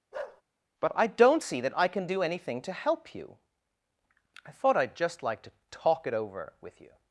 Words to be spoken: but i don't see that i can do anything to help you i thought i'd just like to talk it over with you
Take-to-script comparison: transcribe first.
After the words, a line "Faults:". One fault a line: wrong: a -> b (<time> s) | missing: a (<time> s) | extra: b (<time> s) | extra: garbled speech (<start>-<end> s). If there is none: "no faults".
but i don't see that i can do anything to help you i thought i'd just like to talk it over with you
Faults:
no faults